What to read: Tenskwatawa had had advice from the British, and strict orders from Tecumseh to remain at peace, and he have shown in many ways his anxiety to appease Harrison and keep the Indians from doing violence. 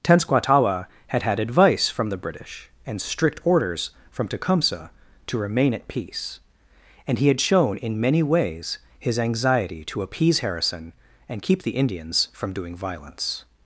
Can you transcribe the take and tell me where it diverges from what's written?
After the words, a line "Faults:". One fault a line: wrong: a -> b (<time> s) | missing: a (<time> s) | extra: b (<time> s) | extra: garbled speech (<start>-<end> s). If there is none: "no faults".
Tenskwatawa had had advice from the British, and strict orders from Tecumseh to remain at peace, and he had shown in many ways his anxiety to appease Harrison and keep the Indians from doing violence.
Faults:
wrong: have -> had (7.3 s)